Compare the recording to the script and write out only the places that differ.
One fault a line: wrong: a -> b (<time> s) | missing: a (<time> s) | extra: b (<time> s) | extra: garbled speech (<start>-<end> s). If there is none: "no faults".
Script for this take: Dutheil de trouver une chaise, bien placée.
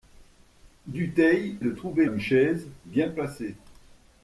no faults